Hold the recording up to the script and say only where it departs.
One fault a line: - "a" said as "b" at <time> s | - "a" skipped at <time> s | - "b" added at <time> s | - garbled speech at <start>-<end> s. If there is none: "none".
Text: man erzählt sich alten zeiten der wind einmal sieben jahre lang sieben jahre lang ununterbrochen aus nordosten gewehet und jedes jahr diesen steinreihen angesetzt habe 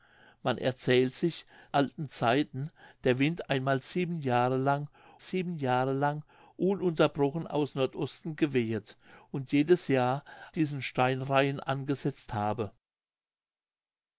none